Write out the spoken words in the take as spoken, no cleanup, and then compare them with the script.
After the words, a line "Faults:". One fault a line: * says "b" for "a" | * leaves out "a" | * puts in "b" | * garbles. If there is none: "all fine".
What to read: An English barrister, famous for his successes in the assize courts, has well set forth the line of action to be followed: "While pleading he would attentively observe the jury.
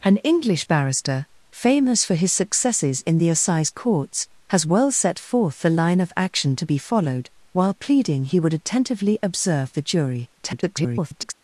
An English barrister, famous for his successes in the assize courts, has well set forth the line of action to be followed: "While pleading he would attentively observe the jury. [garbled]
Faults:
* garbles